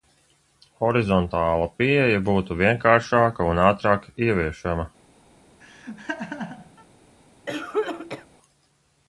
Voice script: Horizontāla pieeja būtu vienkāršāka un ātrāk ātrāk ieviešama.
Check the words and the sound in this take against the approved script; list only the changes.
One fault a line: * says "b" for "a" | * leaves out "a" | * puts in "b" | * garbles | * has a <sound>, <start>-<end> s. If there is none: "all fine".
* leaves out "ātrāk"
* has a laugh, 5.6-6.9 s
* has a cough, 7.5-8.3 s